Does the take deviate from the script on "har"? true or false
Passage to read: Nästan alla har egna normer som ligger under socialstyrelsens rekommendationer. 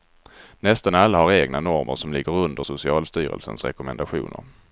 false